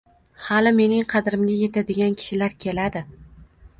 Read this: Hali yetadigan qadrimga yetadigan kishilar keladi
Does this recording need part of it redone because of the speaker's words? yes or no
yes